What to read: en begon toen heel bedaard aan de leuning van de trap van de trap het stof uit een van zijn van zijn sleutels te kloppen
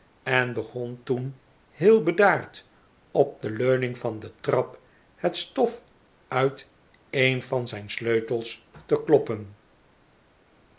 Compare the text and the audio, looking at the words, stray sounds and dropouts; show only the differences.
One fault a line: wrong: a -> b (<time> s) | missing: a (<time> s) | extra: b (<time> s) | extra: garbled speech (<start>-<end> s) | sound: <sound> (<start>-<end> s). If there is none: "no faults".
wrong: aan -> op (3.1 s)
missing: van de trap (4.8 s)
missing: van zijn (7.9 s)